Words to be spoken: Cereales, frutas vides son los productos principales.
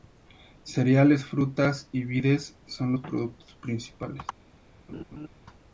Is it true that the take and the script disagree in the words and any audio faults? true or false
true